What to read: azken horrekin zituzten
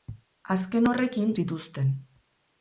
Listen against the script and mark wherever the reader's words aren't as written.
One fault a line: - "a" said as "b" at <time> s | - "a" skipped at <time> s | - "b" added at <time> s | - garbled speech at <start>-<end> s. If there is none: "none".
none